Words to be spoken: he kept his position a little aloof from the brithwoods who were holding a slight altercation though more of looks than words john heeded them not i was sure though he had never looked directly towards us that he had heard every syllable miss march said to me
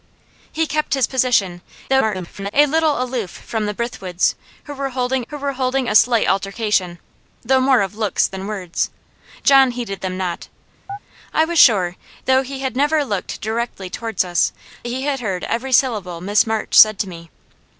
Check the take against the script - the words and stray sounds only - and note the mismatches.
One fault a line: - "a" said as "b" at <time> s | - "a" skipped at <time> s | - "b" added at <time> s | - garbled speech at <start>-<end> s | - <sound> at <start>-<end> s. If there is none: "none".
- garbled speech at 1.9-2.5 s
- "who were holding" added at 5.3 s
- chirp at 10.9-11.0 s
- "that" skipped at 14.5 s